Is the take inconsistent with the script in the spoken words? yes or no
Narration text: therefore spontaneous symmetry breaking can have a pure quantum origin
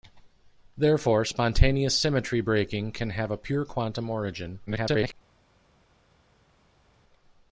yes